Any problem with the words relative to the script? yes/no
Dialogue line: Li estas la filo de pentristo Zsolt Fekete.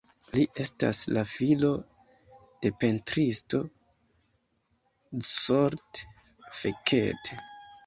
no